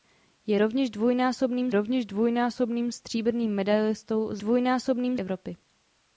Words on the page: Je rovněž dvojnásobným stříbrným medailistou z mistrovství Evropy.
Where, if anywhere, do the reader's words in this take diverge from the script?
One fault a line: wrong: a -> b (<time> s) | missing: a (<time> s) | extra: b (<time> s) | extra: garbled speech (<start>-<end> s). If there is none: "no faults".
extra: rovněž dvojnásobným (1.7 s)
wrong: mistrovství -> dvojnásobným (4.4 s)